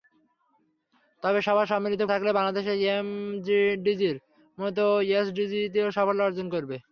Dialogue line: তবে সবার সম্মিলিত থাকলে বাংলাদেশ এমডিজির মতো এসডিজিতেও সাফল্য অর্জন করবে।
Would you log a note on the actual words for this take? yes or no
no